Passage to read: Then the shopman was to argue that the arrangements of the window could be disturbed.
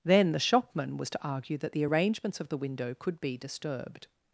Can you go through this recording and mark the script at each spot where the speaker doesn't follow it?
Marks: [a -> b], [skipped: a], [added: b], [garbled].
Then the shopman was to argue that the arrangements of the window could be disturbed.